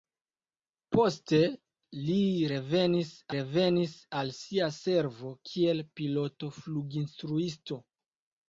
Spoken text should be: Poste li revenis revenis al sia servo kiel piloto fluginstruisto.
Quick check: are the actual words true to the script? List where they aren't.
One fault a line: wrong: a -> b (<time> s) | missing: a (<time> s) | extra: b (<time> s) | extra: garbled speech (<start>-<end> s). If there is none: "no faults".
no faults